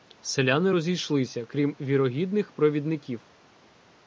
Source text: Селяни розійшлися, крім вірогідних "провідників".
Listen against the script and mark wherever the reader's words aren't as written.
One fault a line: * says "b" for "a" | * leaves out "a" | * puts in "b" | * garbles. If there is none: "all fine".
all fine